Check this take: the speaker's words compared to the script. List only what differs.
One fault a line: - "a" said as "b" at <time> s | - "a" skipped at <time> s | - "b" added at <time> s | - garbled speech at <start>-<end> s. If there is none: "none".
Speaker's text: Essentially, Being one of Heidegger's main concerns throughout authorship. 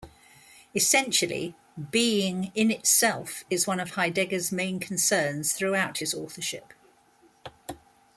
- "in itself is" added at 2.5 s
- "his" added at 6.0 s